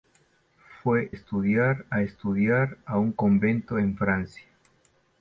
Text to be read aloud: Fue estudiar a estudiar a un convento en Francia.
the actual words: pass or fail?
pass